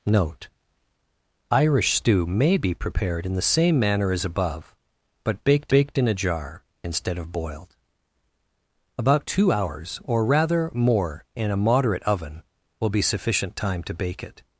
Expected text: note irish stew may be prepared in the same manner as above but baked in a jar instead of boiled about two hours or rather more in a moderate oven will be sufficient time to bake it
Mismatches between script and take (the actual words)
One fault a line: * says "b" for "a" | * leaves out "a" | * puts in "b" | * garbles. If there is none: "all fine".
* puts in "baked"